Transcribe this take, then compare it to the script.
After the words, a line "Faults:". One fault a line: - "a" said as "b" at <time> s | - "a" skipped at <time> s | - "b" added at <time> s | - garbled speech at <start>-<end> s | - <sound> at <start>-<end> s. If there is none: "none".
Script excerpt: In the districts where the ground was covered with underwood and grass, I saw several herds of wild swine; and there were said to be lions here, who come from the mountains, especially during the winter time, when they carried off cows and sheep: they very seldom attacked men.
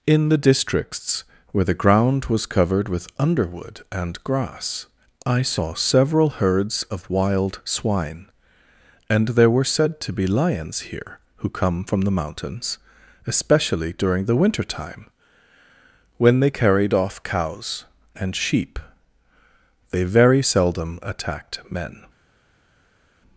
In the districts where the ground was covered with underwood and grass, I saw several herds of wild swine; and there were said to be lions here, who come from the mountains, especially during the winter time, when they carried off cows and sheep: they very seldom attacked men.
Faults:
none